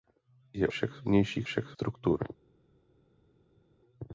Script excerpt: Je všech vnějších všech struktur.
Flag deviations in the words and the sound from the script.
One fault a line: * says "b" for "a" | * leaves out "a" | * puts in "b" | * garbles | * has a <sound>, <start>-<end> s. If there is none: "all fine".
all fine